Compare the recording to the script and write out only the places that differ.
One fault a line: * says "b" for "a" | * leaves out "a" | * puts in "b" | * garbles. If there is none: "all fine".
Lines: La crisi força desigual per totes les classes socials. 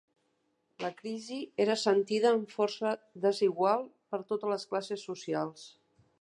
* puts in "era sentida amb"